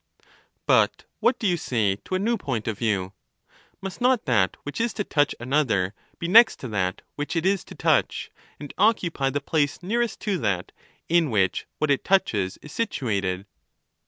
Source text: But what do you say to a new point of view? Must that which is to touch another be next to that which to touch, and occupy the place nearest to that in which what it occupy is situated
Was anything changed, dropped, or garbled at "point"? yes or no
no